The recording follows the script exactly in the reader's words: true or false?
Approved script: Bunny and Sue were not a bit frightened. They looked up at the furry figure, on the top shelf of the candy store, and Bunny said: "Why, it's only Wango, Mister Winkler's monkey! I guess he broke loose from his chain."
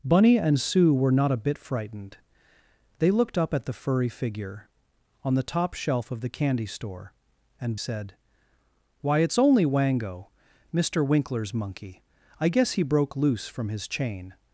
false